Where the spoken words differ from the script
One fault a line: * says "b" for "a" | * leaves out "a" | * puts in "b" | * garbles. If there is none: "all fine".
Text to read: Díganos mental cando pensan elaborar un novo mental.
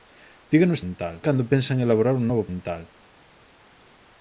all fine